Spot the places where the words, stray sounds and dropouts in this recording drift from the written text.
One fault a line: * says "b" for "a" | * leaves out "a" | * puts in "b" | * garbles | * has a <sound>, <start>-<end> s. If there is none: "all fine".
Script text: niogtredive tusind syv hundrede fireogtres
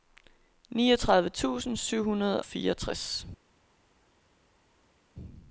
all fine